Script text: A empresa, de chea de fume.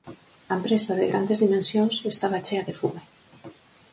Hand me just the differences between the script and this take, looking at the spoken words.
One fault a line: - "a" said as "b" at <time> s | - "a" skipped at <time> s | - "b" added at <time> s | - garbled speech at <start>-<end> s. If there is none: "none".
- "grandes dimensións estaba" added at 1.1 s